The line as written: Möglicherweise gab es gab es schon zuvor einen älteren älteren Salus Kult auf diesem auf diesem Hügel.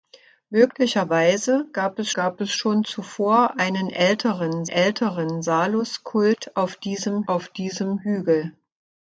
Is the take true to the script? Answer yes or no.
yes